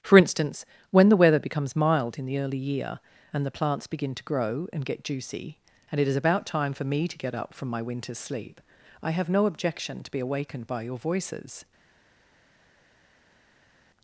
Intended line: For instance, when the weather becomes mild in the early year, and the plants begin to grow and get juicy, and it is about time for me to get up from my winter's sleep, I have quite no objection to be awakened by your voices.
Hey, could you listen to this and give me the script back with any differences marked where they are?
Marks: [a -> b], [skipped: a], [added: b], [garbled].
For instance, when the weather becomes mild in the early year, and the plants begin to grow and get juicy, and it is about time for me to get up from my winter's sleep, I have [skipped: quite] no objection to be awakened by your voices.